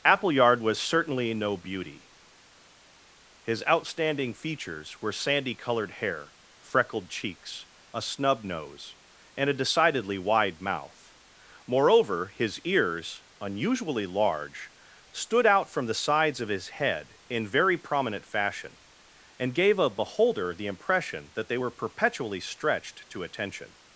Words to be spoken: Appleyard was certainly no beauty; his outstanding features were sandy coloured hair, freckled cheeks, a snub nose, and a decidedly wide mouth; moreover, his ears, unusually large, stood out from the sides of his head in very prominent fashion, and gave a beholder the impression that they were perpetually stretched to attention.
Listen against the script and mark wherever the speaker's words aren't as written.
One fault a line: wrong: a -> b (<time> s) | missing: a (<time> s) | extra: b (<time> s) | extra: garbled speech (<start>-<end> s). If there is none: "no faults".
no faults